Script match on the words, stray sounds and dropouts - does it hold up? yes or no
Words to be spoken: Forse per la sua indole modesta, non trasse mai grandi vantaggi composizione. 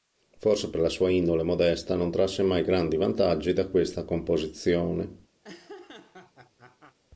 no